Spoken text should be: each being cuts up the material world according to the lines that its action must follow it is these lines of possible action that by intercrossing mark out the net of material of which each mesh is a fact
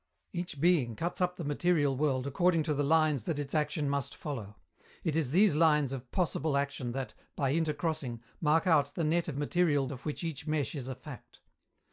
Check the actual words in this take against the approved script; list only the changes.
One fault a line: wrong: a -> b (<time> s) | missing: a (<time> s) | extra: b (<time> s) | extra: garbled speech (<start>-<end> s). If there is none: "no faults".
no faults